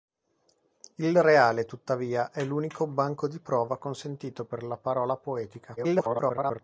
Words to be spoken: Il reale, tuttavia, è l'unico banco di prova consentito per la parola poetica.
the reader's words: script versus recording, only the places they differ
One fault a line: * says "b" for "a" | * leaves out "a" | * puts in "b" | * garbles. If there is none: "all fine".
* garbles